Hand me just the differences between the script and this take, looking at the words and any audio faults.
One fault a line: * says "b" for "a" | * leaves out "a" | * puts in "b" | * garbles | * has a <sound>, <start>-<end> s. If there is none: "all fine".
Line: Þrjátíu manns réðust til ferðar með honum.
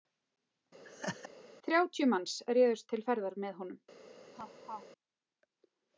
* has a laugh, 0.8-1.3 s
* has a laugh, 4.3-4.9 s